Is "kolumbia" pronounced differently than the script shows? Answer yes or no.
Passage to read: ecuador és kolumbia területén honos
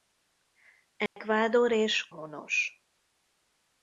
yes